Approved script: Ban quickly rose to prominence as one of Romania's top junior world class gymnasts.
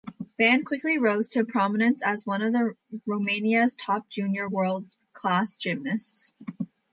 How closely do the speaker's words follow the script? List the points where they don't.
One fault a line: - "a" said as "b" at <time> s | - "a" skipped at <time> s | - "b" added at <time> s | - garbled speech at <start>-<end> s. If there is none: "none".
none